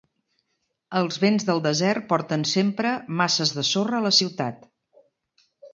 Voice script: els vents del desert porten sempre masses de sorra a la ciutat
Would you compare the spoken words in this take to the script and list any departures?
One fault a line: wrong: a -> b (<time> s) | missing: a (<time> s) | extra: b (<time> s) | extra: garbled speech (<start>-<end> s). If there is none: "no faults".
no faults